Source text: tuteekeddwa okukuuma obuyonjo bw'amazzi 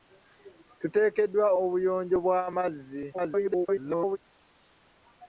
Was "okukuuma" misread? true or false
true